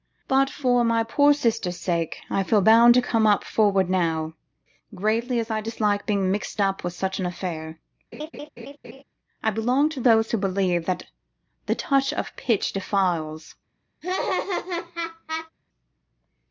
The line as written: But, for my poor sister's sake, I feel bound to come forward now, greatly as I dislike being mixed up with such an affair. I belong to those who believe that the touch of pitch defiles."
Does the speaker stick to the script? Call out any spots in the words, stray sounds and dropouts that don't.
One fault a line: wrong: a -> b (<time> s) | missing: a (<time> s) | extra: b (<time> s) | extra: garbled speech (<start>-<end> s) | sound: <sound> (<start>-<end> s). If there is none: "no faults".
sound: laugh (8.1-9.0 s)
sound: laugh (14.0-15.5 s)